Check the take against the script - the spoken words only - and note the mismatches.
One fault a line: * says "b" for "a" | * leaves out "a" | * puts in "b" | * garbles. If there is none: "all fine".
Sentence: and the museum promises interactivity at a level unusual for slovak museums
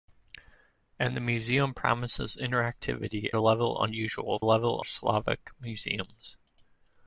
* leaves out "at"
* says "level" for "for"